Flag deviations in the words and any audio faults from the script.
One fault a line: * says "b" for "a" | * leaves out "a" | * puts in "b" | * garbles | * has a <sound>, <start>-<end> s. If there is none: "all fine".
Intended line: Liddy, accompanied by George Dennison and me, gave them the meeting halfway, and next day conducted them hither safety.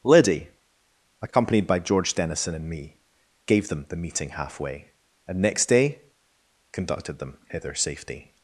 all fine